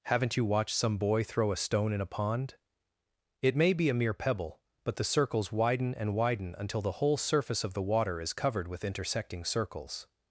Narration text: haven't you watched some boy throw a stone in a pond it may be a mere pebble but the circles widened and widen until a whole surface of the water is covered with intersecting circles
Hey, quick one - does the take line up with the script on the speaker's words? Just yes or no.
no